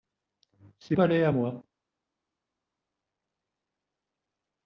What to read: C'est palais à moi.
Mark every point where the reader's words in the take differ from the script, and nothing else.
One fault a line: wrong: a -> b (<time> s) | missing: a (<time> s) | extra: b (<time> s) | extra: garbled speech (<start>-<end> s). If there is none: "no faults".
no faults